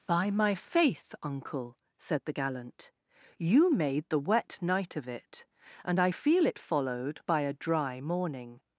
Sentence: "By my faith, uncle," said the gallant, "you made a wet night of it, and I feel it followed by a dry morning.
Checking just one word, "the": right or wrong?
right